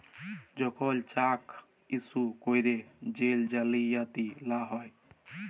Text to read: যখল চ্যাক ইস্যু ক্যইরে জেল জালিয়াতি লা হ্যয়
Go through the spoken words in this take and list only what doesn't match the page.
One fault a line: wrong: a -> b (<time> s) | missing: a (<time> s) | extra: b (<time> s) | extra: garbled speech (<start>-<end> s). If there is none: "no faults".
no faults